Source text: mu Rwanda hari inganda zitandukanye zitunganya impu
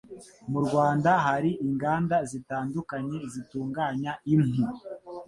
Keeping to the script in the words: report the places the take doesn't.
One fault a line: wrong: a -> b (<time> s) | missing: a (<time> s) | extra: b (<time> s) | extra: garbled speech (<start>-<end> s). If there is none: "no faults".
no faults